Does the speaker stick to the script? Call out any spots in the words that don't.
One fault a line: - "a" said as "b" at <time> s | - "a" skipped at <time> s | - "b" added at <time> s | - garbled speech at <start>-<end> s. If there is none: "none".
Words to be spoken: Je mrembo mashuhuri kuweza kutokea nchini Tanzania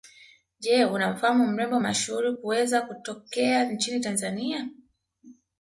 - "unamfahamu" added at 0.8 s